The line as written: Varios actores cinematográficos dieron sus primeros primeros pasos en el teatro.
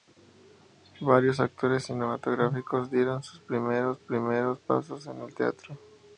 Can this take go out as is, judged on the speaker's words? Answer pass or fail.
pass